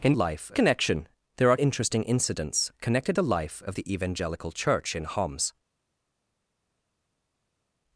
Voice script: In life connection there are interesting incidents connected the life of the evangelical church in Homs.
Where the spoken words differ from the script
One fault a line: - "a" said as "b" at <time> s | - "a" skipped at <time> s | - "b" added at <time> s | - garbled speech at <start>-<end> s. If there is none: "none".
none